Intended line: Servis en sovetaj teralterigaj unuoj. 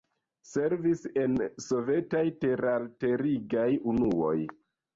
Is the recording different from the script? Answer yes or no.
no